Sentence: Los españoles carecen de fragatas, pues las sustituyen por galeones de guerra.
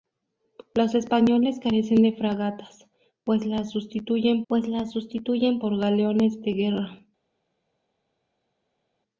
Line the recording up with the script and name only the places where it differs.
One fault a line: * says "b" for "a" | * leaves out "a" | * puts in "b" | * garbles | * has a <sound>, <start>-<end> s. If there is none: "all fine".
* puts in "pues las sustituyen"